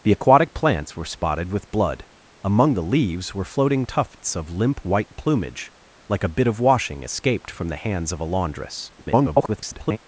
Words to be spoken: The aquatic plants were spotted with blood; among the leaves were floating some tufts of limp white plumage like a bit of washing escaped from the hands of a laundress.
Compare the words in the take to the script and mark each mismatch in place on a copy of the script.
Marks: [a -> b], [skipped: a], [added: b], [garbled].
The aquatic plants were spotted with blood; among the leaves were floating [skipped: some] tufts of limp white plumage like a bit of washing escaped from the hands of a laundress. [garbled]